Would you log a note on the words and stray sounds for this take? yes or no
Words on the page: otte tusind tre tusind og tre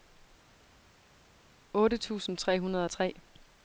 yes